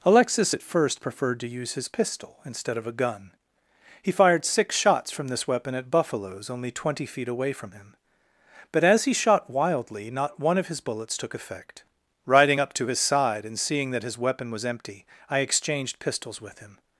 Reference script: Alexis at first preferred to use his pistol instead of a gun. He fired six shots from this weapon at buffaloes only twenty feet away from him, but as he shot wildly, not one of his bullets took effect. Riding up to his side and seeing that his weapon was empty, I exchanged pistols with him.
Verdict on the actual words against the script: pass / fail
pass